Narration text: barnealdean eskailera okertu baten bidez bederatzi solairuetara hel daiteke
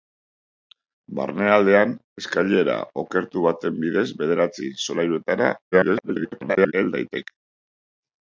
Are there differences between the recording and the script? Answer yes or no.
yes